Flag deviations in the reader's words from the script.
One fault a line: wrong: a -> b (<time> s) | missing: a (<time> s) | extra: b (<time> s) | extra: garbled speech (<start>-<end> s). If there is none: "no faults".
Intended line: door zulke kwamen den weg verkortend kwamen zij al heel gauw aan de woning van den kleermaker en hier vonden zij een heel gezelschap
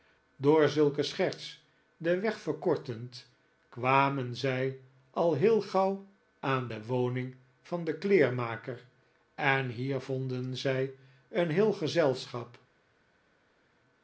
wrong: kwamen -> scherts (1.0 s)